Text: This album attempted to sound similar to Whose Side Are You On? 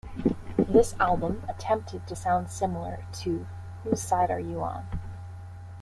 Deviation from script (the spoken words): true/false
false